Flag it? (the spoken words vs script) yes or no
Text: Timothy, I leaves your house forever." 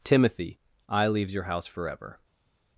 no